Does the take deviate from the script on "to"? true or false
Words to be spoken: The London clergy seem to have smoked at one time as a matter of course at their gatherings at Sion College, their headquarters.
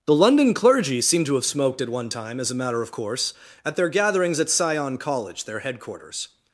false